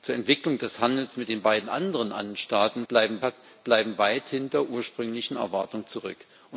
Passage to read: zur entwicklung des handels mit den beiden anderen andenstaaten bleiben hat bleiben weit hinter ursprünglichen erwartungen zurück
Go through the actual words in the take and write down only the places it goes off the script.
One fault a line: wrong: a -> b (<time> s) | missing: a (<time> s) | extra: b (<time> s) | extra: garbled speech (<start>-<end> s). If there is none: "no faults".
no faults